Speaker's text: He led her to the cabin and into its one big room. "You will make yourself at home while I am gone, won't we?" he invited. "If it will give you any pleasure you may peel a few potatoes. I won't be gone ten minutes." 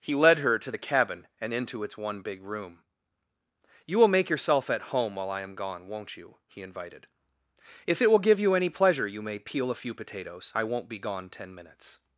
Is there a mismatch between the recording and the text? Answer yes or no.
yes